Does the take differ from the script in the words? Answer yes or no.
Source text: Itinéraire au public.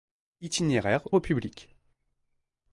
no